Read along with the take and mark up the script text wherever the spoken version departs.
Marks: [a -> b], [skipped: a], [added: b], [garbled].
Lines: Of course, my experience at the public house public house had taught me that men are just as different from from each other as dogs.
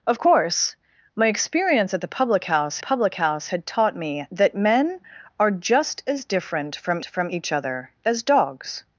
Of course, my experience at the public house public house had taught me that men are just as different from from each other as dogs.